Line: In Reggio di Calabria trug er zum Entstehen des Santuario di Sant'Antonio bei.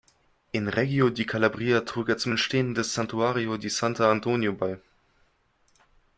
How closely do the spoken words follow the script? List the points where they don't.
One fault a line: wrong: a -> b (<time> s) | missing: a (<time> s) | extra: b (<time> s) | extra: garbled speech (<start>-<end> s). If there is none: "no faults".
no faults